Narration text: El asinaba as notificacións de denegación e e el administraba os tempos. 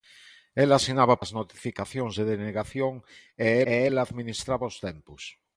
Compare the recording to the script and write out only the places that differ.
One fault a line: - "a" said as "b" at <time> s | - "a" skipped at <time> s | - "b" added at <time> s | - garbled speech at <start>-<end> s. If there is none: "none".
none